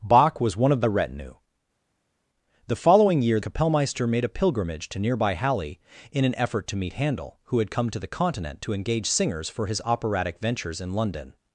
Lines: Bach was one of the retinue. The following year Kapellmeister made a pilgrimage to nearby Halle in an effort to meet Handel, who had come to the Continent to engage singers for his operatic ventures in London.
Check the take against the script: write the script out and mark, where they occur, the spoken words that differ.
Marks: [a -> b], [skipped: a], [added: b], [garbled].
Bach was one of the retinue. The following year Kapellmeister made a pilgrimage to nearby Halle in an effort to meet Handel, who had come to the Continent to engage singers for his operatic ventures in London.